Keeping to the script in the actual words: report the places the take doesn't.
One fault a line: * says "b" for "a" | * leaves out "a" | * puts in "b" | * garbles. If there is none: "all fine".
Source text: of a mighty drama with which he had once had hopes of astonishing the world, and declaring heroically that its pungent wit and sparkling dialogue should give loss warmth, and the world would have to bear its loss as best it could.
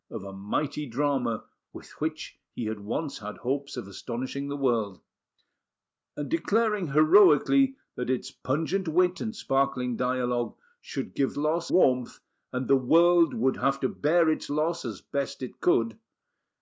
all fine